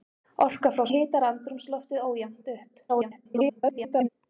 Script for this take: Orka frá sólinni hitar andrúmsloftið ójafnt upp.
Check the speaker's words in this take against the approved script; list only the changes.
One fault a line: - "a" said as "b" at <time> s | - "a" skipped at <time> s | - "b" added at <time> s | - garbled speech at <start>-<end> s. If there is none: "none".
- "sólinni" skipped at 0.8 s
- garbled speech at 2.9-4.1 s